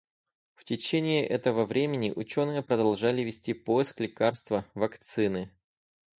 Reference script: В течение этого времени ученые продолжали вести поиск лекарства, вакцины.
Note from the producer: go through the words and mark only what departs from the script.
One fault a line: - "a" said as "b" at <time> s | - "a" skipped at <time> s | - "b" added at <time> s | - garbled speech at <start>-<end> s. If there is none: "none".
none